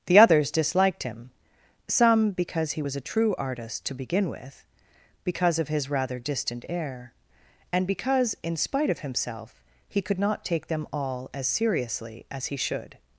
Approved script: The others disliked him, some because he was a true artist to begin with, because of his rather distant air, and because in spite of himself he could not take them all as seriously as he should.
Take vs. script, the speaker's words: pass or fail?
pass